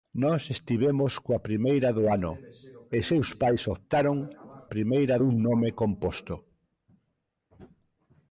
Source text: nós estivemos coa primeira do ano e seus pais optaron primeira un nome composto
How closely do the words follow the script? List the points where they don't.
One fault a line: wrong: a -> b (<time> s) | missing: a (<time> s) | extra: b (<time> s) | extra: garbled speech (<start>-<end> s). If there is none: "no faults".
no faults